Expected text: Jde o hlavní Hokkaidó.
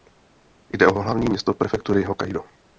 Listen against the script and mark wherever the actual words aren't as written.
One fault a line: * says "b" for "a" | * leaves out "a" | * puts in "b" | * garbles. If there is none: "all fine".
* puts in "město prefektury"